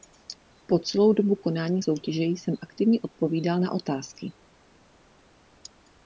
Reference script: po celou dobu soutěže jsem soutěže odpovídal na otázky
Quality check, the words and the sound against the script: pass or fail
fail